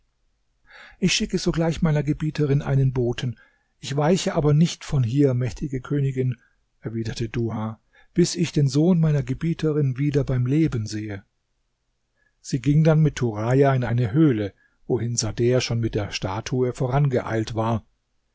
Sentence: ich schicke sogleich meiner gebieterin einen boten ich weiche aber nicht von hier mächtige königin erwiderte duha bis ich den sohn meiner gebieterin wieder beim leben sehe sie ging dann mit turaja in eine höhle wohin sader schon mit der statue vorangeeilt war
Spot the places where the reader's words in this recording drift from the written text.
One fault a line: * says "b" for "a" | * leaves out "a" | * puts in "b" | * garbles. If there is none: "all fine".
all fine